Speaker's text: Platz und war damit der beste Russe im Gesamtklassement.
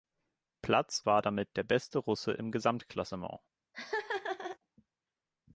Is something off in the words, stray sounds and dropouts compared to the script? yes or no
yes